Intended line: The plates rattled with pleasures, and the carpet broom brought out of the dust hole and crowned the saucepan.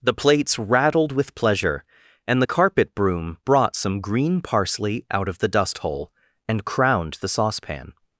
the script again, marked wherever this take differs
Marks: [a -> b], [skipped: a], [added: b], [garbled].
The plates rattled with [pleasures, -> pleasure] and the carpet broom brought [added: some green parsley] out of the dust hole and crowned the saucepan.